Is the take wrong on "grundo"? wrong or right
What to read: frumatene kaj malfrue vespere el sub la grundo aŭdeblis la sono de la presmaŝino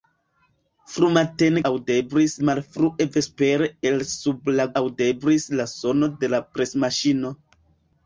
wrong